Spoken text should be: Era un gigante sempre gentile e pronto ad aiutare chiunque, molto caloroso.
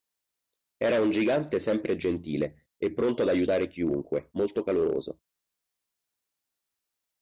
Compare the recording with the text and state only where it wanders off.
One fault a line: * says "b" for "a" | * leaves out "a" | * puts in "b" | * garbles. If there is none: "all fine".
all fine